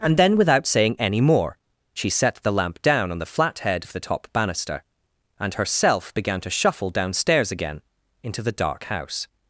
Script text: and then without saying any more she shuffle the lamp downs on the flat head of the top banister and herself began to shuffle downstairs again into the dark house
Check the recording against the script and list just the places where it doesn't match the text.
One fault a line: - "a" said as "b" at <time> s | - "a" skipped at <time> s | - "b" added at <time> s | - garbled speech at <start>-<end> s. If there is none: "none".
- "shuffle" said as "set" at 2.1 s
- "downs" said as "down" at 2.8 s